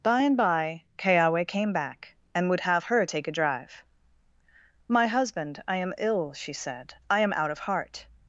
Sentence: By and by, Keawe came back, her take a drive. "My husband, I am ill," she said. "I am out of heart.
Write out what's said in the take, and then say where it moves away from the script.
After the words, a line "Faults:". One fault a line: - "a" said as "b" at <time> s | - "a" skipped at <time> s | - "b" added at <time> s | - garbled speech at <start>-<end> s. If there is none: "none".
By and by, Keawe came back, and would have her take a drive. "My husband, I am ill," she said. "I am out of heart.
Faults:
- "and would have" added at 2.3 s